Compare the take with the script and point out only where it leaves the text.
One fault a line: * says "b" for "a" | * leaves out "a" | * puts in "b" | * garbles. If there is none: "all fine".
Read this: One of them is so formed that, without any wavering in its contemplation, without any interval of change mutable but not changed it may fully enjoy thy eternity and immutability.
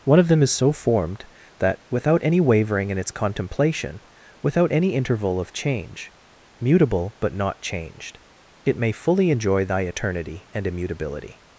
all fine